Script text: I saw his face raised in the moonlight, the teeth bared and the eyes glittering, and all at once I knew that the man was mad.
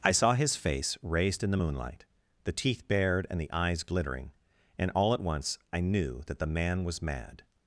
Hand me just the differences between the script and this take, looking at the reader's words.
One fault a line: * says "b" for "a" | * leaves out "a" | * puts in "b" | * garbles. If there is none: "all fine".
all fine